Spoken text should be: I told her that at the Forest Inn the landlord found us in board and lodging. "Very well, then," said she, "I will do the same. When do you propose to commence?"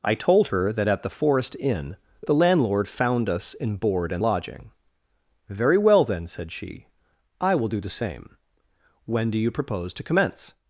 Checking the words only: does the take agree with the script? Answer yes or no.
yes